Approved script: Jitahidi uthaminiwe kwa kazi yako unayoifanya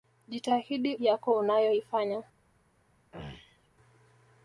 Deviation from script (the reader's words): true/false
true